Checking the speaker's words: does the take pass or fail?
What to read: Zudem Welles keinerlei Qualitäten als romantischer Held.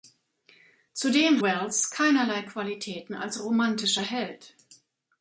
pass